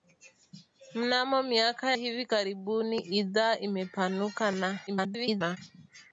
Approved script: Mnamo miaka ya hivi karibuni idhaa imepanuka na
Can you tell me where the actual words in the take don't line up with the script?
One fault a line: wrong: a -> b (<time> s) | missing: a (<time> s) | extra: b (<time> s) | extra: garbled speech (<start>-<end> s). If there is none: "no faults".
missing: ya (1.9 s)
extra: garbled speech (4.9-5.6 s)